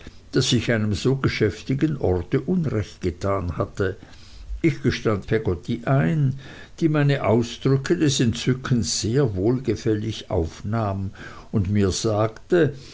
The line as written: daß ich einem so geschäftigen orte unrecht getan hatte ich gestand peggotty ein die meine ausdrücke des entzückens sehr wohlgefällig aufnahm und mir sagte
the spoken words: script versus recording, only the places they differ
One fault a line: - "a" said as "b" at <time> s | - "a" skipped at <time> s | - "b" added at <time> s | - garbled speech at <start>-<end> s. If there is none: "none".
none